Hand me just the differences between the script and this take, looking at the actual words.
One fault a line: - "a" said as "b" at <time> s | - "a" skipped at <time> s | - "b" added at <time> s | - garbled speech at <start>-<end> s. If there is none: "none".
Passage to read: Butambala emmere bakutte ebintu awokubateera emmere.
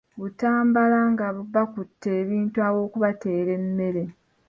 - "emmere" said as "nga" at 1.1 s